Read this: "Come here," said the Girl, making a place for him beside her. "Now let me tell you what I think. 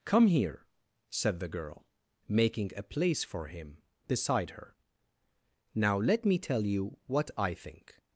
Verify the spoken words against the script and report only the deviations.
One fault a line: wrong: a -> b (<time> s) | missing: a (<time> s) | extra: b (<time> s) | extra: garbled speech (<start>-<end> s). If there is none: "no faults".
no faults